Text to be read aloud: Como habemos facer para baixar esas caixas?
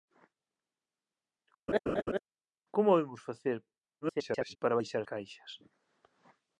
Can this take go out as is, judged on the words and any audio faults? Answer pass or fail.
fail